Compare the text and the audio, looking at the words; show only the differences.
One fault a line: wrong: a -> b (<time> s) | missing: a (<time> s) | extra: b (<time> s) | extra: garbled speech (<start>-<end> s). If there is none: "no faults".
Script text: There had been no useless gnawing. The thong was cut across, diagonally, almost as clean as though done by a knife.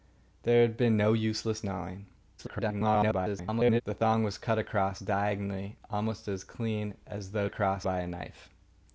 extra: garbled speech (2.4-3.8 s)
wrong: done -> across (7.4 s)